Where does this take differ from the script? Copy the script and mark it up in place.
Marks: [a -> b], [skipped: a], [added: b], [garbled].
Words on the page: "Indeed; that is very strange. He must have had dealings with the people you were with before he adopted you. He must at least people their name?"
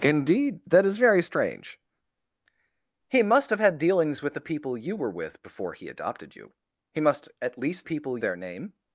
"Indeed; that is very strange. He must have had dealings with the people you were with before he adopted you. He must at least people their name?"